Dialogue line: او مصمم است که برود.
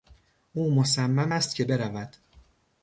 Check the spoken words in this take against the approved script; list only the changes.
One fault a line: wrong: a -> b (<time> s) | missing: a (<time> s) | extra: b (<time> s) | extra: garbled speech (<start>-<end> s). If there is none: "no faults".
no faults